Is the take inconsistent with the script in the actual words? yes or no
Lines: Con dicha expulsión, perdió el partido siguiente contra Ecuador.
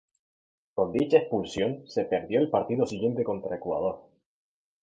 yes